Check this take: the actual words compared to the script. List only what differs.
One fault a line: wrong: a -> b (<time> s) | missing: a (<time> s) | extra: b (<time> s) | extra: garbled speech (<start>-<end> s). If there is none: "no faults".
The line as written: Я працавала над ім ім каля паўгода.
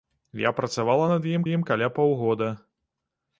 no faults